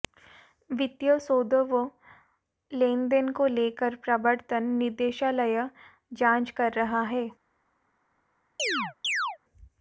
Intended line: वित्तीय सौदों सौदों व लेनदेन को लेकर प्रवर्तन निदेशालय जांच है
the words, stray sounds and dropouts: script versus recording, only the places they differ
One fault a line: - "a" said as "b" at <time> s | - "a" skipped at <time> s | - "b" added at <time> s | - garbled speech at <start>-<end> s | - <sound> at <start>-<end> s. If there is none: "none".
- "सौदों" skipped at 1.6 s
- "कर रहा" added at 6.6 s
- chirp at 8.6-9.4 s